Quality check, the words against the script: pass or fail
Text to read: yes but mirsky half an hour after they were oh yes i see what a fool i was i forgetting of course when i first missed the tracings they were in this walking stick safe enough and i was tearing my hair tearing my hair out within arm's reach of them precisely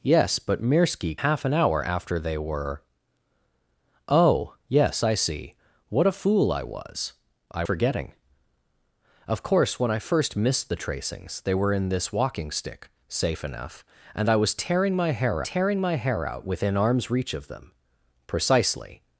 pass